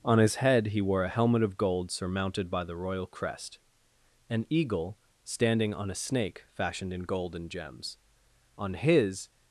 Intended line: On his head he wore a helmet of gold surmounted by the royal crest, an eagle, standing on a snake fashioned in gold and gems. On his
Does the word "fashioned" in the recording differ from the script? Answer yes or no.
no